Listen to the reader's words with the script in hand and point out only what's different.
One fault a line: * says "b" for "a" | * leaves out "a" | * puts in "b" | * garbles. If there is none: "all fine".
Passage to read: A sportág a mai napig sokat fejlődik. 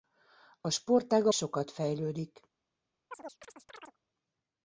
* leaves out "mai napig"